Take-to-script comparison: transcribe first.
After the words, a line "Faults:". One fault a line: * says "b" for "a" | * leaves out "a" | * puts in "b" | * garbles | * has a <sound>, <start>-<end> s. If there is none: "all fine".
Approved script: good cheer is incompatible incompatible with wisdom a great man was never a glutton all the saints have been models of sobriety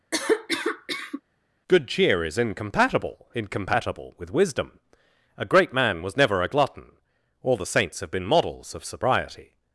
good cheer is incompatible incompatible with wisdom a great man was never a glutton all the saints have been models of sobriety
Faults:
* has a cough, 0.1-1.2 s